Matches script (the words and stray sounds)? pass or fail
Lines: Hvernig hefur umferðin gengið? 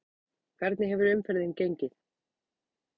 pass